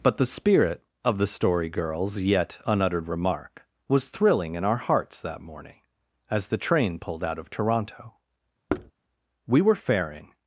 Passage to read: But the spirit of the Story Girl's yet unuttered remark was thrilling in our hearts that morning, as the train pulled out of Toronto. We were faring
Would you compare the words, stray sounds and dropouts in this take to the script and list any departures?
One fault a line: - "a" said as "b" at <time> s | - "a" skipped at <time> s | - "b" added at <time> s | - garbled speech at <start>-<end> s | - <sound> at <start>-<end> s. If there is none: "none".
- thud at 8.7-8.9 s